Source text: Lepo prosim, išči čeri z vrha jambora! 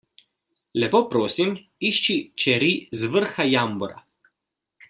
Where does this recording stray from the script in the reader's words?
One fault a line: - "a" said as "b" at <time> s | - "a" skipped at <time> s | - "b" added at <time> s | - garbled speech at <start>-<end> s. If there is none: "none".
none